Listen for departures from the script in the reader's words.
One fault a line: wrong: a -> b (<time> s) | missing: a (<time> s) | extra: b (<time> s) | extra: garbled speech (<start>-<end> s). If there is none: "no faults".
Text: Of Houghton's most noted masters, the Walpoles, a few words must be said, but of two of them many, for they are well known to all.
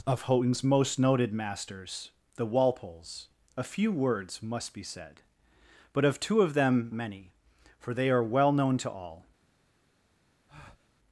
no faults